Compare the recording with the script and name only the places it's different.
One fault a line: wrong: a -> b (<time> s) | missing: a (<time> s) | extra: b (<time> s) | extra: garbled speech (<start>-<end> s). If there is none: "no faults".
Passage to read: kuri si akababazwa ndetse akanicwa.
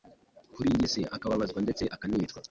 extra: iyi (0.8 s)